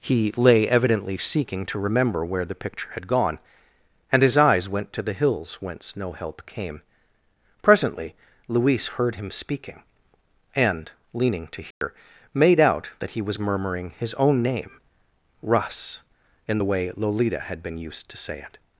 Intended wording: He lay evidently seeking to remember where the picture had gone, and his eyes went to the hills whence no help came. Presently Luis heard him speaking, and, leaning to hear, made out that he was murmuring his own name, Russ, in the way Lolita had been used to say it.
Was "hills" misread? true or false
false